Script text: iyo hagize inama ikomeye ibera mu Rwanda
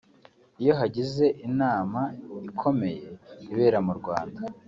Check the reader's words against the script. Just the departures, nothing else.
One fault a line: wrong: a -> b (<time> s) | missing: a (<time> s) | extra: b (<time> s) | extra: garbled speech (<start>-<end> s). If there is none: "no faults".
no faults